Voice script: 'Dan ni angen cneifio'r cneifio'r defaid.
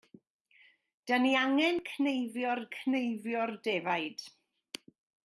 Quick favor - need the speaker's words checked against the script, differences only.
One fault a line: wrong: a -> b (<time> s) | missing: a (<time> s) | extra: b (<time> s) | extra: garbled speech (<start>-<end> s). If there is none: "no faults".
no faults